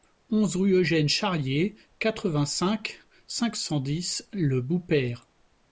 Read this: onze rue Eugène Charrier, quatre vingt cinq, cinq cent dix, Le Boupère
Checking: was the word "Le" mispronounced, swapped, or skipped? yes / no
no